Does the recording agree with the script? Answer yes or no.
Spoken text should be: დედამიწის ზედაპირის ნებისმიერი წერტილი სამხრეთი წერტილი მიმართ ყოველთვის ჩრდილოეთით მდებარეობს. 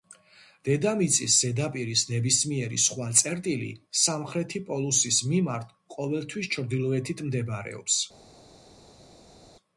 no